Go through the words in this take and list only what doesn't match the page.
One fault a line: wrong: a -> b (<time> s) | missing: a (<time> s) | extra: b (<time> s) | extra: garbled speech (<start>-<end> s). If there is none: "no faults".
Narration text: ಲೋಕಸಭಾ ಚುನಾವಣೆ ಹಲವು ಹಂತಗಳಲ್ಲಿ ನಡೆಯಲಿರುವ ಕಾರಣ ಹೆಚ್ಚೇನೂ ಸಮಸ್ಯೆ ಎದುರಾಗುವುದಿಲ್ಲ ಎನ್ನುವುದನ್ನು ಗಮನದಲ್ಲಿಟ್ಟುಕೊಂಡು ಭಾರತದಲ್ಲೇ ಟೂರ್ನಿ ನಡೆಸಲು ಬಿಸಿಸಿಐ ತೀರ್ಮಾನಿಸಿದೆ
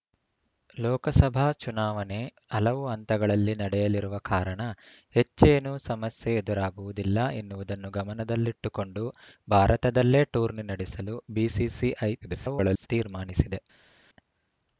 extra: garbled speech (12.2-12.9 s)